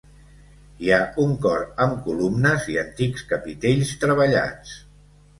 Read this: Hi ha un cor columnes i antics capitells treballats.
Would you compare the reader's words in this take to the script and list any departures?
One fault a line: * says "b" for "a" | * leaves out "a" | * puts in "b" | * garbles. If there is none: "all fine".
* puts in "amb"